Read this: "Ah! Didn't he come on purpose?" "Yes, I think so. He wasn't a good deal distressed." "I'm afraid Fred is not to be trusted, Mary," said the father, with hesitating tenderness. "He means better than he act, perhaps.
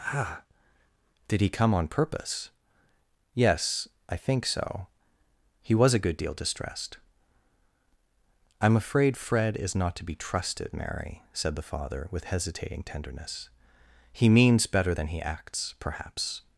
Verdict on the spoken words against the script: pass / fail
fail